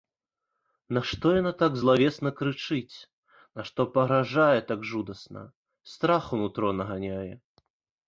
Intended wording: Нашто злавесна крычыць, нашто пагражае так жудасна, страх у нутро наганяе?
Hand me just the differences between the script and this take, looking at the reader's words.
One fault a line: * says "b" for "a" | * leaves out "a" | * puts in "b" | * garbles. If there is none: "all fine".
* puts in "яна так"